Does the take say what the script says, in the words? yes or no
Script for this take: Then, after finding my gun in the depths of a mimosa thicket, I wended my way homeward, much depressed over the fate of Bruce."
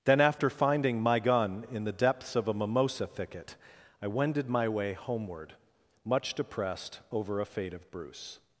no